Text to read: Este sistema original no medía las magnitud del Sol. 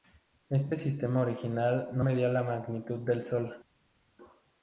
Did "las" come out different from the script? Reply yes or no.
yes